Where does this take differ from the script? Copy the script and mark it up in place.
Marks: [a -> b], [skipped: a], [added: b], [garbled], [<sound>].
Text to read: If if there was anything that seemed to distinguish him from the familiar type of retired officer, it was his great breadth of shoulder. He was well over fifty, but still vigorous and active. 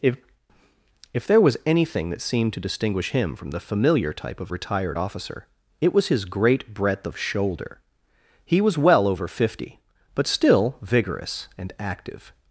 If if there was anything that seemed to distinguish him from the familiar type of retired officer, it was his great breadth of shoulder. He was well over fifty, but still vigorous and active.